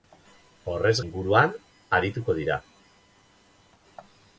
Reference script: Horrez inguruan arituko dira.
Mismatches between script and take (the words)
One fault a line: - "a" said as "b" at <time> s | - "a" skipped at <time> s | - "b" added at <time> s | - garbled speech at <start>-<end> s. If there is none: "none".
none